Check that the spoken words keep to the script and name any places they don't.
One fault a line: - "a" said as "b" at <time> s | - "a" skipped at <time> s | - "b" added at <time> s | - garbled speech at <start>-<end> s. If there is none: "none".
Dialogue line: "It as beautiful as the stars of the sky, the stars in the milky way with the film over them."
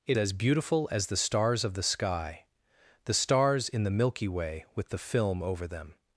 none